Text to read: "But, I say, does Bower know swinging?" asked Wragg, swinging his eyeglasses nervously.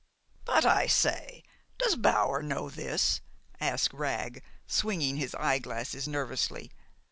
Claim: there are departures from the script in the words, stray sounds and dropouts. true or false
true